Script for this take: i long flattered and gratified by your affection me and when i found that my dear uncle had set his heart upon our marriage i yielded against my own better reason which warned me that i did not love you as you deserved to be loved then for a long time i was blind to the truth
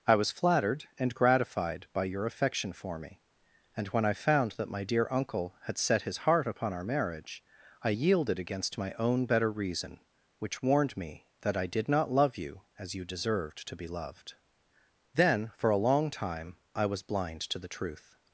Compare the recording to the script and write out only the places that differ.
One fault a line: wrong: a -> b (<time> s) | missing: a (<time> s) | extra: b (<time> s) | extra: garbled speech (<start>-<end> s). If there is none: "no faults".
wrong: long -> was (0.1 s)
extra: for (2.7 s)